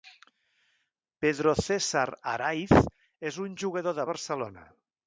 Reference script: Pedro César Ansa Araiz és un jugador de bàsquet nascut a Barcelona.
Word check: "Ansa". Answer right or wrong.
wrong